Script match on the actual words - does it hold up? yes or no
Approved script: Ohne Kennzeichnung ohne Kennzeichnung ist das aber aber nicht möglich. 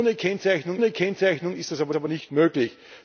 yes